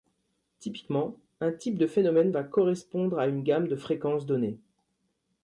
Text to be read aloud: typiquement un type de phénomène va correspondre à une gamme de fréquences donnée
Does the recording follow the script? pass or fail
pass